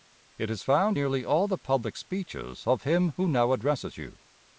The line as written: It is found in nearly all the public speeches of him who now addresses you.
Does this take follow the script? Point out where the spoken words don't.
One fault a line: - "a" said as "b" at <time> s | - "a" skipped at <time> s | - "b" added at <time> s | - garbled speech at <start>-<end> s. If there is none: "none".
- "in" skipped at 1.0 s